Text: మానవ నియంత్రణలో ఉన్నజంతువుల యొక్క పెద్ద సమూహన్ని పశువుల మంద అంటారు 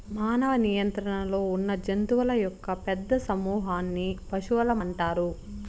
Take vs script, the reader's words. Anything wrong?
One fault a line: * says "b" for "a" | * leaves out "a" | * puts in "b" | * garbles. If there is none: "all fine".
* leaves out "మంద"